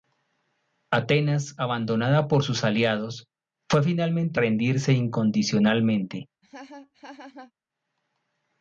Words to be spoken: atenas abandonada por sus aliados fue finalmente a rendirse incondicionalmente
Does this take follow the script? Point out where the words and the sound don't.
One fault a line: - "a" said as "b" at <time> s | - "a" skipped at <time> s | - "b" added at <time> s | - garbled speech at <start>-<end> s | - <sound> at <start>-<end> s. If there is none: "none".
- laugh at 6.4-7.5 s